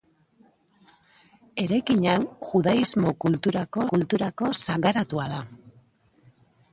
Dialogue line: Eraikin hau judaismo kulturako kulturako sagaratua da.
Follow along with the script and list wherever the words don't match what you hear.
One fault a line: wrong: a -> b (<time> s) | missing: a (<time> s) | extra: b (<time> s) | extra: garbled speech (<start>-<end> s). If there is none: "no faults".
no faults